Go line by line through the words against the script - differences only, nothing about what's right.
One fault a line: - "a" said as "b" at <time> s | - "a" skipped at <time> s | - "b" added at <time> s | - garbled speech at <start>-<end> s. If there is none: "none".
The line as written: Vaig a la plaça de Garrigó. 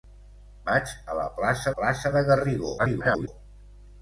- "plaça" added at 1.7 s
- garbled speech at 2.8-3.3 s